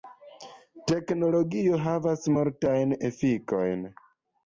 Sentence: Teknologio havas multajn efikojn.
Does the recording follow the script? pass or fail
pass